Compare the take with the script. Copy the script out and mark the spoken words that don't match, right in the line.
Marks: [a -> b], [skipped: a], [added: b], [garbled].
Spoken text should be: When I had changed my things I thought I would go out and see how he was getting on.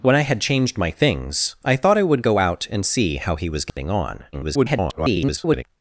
When I had changed my things I thought I would go out and see how he was getting on. [garbled]